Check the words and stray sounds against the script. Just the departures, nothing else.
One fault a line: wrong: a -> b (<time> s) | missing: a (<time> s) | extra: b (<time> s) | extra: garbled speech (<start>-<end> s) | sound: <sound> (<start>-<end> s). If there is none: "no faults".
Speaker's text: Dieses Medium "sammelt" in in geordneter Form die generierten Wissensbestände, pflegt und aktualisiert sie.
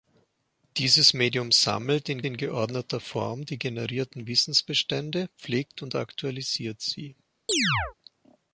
sound: chirp (7.5-7.9 s)